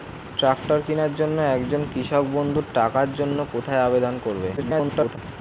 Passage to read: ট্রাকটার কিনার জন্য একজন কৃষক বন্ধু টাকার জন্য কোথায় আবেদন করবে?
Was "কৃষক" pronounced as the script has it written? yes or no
yes